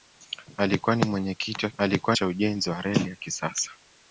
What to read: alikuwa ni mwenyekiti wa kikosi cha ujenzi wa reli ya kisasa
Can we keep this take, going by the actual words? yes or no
no